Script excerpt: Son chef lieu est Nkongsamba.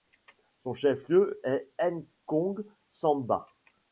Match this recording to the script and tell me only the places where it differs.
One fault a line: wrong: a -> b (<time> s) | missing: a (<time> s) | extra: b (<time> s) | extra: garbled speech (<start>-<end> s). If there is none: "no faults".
no faults